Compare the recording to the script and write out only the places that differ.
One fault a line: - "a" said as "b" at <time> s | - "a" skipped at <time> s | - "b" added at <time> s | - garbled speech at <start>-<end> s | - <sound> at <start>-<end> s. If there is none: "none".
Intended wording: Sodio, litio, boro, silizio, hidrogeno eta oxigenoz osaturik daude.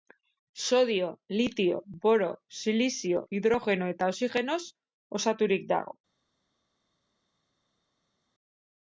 - "daude" said as "dago" at 5.7 s